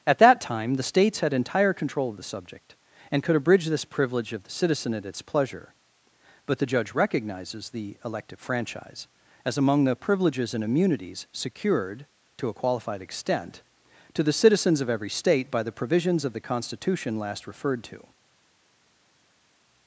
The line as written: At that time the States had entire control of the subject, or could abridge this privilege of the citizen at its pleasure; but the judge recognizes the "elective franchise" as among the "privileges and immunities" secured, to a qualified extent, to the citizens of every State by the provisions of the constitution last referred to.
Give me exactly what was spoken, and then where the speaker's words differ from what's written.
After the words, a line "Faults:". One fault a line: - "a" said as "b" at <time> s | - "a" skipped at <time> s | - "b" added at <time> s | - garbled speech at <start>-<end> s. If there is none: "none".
At that time the States had entire control of the subject, and could abridge this privilege of the citizen at its pleasure; but the judge recognizes the "elective franchise" as among the "privileges and immunities" secured, to a qualified extent, to the citizens of every State by the provisions of the constitution last referred to.
Faults:
- "or" said as "and" at 3.1 s